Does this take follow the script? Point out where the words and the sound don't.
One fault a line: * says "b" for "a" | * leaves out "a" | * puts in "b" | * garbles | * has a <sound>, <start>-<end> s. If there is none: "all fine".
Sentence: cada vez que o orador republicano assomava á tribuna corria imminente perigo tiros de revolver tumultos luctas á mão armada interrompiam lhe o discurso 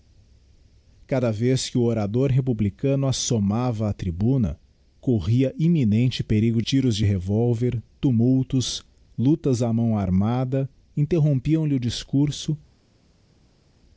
all fine